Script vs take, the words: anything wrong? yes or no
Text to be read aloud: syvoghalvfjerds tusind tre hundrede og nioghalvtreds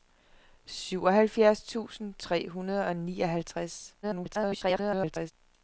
yes